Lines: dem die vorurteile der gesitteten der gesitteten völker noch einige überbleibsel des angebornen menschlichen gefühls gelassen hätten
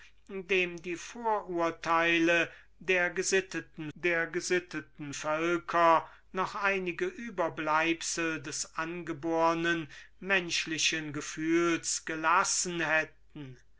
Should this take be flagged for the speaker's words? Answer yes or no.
no